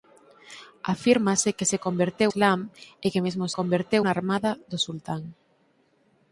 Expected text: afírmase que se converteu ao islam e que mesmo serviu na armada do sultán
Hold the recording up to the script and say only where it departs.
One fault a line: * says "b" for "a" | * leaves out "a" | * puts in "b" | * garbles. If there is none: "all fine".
* leaves out "ao"
* says "converteu" for "serviu"